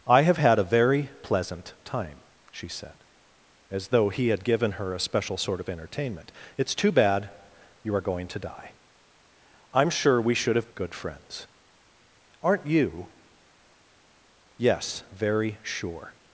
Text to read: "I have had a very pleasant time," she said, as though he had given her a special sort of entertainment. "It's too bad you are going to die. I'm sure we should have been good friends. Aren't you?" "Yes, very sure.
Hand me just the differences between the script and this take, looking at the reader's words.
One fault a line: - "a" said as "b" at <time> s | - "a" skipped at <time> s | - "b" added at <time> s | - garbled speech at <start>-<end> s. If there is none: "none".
- "been" skipped at 10.7 s